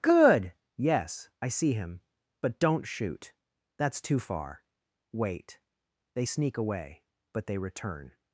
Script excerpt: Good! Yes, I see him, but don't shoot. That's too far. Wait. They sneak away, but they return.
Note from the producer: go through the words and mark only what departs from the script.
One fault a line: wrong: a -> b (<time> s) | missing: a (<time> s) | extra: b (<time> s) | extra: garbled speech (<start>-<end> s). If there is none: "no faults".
no faults